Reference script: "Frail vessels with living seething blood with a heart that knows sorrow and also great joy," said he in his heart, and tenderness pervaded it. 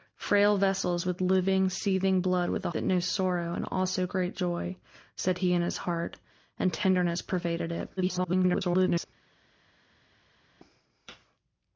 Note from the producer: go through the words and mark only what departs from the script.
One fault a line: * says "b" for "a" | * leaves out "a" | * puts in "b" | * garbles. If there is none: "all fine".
* leaves out "heart"
* garbles